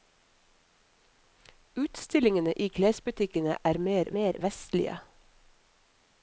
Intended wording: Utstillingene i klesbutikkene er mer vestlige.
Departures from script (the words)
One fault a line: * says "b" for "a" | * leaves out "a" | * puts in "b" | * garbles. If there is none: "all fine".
* puts in "mer"